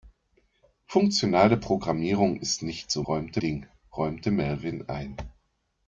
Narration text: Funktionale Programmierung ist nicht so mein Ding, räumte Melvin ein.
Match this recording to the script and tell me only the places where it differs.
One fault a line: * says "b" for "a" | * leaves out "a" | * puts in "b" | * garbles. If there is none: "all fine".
* says "räumte" for "mein"